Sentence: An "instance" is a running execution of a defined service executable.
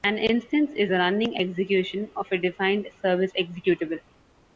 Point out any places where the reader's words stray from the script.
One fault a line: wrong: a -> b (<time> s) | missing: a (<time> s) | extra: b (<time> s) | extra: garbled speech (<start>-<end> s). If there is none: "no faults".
no faults